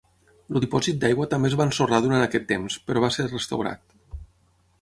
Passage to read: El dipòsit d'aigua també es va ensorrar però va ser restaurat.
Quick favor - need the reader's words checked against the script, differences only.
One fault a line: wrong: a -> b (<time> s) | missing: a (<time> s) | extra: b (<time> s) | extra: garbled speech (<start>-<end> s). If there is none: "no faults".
extra: durant aquest temps (2.0 s)